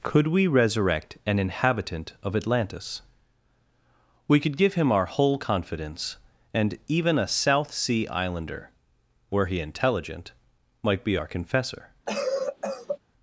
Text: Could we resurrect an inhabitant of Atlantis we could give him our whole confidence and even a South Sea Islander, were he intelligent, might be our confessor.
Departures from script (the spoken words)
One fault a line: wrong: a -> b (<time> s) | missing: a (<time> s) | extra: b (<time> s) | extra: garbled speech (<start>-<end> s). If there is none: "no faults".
no faults